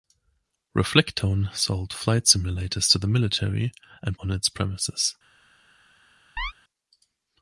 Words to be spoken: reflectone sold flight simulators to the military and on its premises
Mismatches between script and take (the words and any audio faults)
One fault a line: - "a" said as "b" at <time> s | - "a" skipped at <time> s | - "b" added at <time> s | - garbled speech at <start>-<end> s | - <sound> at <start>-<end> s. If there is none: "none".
- chirp at 6.4-6.5 s